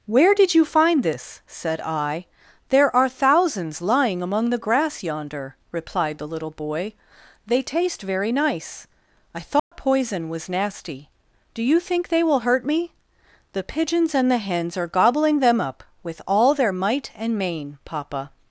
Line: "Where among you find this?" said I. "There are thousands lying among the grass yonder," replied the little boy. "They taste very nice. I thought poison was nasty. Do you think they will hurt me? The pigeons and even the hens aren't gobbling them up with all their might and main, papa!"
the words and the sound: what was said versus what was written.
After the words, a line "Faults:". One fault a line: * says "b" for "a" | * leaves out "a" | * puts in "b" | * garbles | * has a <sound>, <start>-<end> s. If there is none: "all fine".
"Where did you find this?" said I. "There are thousands lying among the grass yonder," replied the little boy. "They taste very nice. I thought poison was nasty. Do you think they will hurt me? The pigeons and the hens are gobbling them up with all their might and main, papa!"
Faults:
* says "did" for "among"
* has a dropout, 9.6-9.7 s
* leaves out "even"
* says "are" for "aren't"